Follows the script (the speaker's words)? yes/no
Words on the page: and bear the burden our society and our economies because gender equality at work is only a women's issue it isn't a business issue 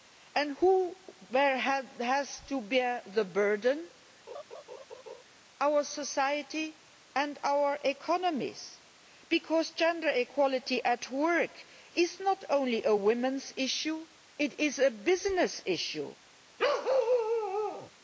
no